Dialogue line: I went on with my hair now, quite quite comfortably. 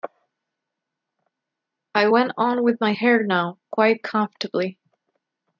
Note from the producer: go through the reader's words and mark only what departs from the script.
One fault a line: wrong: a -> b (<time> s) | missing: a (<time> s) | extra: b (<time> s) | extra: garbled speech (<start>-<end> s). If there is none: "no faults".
missing: quite (4.0 s)